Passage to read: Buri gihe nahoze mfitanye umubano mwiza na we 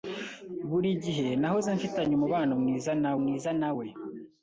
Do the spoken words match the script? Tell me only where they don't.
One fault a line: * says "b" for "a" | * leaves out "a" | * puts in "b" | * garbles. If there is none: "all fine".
* puts in "mwiza na"